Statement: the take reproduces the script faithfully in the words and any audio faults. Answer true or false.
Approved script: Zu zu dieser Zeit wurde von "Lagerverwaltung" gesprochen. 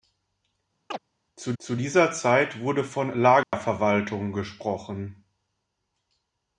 false